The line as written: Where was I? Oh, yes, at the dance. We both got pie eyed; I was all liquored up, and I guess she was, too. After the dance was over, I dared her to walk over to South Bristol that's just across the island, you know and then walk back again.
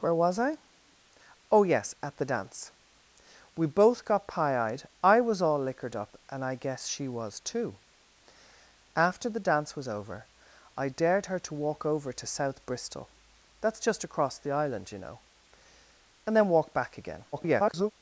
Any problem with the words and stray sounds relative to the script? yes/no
yes